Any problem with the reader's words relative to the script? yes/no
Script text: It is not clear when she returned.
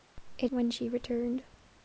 yes